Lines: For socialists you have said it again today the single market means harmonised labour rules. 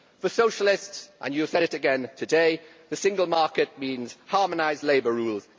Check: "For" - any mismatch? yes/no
no